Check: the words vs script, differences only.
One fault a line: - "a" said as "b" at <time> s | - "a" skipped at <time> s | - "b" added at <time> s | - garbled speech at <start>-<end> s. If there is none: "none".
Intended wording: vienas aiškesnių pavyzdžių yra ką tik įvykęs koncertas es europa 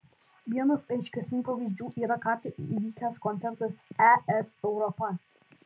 none